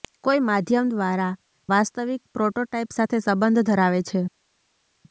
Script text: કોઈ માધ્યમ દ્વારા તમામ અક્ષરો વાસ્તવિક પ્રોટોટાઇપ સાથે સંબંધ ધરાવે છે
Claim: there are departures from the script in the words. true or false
true